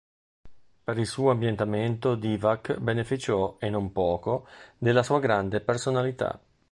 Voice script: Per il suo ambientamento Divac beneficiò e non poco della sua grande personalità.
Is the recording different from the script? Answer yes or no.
no